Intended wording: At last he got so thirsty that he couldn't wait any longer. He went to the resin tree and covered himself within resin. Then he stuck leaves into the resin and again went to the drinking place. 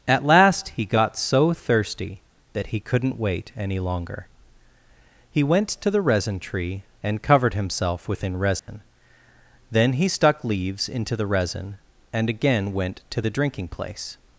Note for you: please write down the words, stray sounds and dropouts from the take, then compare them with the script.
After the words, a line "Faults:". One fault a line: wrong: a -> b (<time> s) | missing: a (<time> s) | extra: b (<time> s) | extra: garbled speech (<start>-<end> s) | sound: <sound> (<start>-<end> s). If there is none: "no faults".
At last he got so thirsty that he couldn't wait any longer. He went to the resin tree and covered himself within resin. Then he stuck leaves into the resin and again went to the drinking place.
Faults:
sound: dropout (8.6-8.7 s)